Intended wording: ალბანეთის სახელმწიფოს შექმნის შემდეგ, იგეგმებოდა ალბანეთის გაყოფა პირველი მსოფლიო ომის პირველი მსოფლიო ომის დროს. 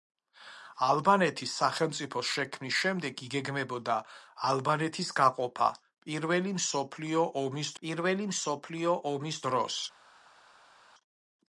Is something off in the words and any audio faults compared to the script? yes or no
no